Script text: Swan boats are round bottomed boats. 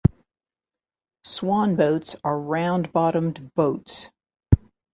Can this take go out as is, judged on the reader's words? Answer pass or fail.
pass